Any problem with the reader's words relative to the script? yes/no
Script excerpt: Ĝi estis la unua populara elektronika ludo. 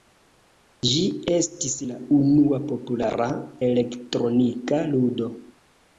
no